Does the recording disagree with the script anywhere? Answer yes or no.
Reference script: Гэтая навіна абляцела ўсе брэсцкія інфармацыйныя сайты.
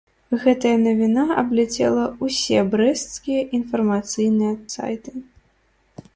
no